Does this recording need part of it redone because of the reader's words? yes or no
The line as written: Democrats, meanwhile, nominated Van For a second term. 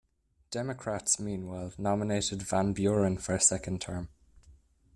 yes